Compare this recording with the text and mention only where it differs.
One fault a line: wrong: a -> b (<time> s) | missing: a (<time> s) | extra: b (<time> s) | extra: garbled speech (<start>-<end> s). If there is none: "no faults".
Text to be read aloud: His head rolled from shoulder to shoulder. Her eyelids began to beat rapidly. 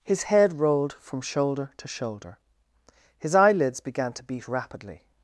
wrong: Her -> His (3.2 s)